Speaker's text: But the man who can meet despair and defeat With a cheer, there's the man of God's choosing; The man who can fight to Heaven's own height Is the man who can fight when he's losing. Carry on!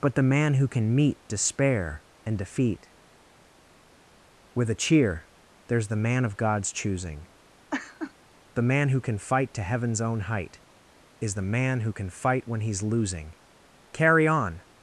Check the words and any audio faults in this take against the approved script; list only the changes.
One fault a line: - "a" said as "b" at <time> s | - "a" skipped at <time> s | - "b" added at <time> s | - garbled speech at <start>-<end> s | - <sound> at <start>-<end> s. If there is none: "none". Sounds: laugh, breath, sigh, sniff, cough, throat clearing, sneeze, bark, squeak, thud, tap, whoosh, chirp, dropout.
- laugh at 7.7-8.1 s